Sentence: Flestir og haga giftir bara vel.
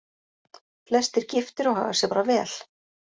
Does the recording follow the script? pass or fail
fail